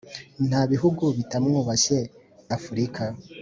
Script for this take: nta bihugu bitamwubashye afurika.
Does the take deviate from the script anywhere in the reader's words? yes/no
no